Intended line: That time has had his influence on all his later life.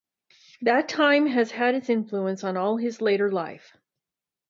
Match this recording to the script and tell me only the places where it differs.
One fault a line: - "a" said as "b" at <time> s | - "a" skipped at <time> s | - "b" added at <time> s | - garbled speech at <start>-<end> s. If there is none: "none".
- "his" said as "its" at 1.8 s